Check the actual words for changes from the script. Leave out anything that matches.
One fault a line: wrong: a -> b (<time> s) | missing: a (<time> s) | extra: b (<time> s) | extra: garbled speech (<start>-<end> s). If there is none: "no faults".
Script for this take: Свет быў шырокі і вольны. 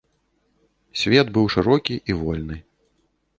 no faults